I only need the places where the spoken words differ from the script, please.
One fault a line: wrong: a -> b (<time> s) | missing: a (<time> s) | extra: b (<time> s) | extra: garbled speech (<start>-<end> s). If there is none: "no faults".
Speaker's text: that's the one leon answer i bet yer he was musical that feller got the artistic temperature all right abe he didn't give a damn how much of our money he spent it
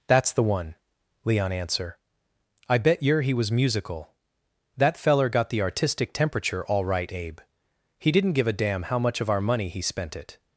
no faults